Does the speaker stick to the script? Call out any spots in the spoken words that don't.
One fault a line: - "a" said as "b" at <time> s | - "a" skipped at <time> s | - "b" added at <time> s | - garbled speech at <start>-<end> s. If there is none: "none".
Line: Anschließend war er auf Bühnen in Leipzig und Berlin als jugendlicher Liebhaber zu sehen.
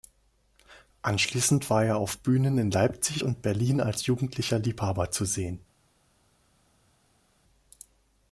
none